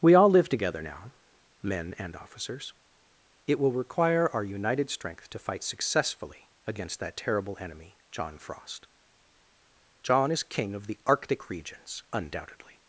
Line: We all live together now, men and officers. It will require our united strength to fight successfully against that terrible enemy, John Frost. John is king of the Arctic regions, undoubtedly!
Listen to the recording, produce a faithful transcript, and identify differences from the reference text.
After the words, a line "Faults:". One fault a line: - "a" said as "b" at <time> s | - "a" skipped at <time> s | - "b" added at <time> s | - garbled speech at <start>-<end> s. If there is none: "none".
We all live together now, men and officers. It will require our united strength to fight successfully against that terrible enemy, John Frost. John is king of the Arctic regions, undoubtedly!
Faults:
none